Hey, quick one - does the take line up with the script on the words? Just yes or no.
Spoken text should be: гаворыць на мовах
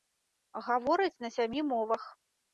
no